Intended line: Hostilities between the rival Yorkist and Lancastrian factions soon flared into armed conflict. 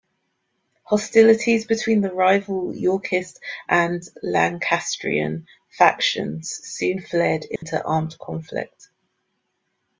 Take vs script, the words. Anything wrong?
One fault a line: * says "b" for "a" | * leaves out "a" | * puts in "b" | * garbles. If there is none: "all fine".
all fine